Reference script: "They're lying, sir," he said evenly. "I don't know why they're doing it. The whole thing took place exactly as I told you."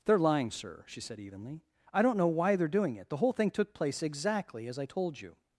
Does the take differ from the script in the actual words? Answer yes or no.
yes